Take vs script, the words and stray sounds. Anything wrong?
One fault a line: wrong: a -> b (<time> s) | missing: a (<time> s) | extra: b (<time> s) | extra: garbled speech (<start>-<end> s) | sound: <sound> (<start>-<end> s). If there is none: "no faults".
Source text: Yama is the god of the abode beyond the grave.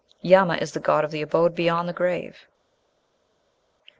no faults